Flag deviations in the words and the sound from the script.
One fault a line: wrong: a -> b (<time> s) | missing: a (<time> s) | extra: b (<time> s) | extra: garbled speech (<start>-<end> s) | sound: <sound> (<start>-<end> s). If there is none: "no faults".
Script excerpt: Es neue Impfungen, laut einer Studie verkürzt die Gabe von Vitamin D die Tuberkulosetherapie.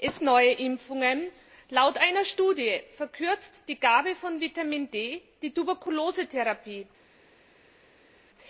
no faults